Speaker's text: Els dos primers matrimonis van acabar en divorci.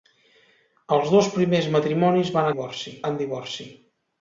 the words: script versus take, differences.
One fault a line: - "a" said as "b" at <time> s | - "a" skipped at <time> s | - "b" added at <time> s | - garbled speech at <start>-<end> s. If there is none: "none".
- "acabar" said as "divorci" at 2.5 s